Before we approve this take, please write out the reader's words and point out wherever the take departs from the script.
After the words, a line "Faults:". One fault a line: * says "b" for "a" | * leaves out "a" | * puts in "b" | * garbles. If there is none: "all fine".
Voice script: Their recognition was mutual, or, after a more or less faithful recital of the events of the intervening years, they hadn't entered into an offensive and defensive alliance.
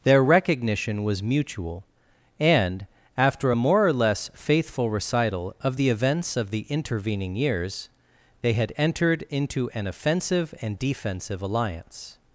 Their recognition was mutual, and, after a more or less faithful recital of the events of the intervening years, they had entered into an offensive and defensive alliance.
Faults:
* says "and" for "or"
* says "had" for "hadn't"